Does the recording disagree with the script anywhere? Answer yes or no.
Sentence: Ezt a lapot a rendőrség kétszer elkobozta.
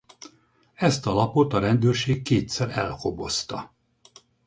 no